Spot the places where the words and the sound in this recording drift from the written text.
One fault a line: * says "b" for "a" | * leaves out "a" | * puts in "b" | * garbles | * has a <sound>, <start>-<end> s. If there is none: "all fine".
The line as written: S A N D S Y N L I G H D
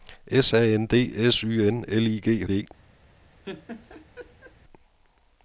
* has a laugh, 3.4-4.5 s